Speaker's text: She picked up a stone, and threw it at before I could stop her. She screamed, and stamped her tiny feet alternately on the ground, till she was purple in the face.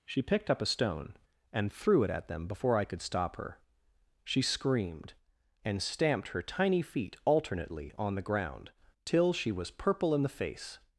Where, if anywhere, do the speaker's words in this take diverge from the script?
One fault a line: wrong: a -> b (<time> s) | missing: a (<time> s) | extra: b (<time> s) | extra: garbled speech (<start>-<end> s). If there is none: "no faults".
extra: them (2.3 s)